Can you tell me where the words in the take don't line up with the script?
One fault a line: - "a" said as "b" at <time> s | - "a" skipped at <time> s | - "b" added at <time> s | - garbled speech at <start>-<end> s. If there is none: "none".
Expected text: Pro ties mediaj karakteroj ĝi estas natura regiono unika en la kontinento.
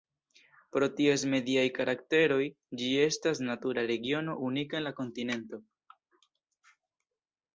none